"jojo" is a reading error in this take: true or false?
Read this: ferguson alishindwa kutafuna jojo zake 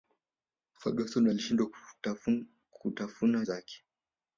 true